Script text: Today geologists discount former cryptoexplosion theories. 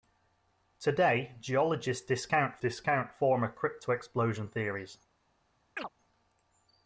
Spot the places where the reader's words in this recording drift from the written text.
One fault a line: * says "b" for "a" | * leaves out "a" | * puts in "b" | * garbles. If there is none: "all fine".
* puts in "discount"